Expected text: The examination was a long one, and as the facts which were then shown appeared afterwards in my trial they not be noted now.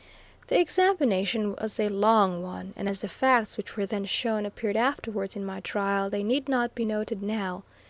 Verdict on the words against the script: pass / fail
fail